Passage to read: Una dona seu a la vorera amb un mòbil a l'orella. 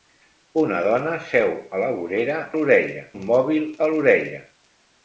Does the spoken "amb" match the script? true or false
false